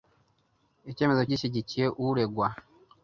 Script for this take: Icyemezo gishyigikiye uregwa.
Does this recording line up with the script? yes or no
yes